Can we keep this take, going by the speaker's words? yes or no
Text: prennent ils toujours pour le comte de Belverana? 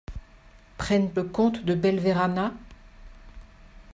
no